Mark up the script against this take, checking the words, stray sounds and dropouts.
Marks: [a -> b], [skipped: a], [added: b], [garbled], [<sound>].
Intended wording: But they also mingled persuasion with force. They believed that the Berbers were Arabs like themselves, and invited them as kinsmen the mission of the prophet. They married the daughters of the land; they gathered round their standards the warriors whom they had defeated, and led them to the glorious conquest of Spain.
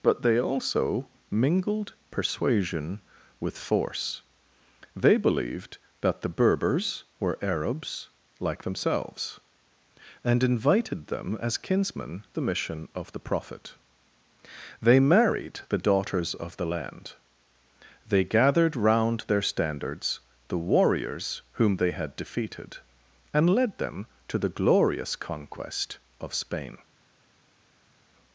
But they also mingled persuasion with force. They believed that the Berbers were Arabs like themselves, and invited them as kinsmen the mission of the prophet. They married the daughters of the land; they gathered round their standards the warriors whom they had defeated, and led them to the glorious conquest of Spain.